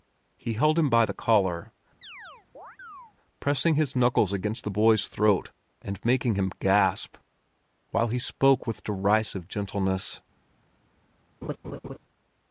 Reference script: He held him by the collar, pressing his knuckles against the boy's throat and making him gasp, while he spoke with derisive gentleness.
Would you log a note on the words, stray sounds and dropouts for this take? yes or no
yes